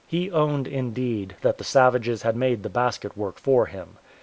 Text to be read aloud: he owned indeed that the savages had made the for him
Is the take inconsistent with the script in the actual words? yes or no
yes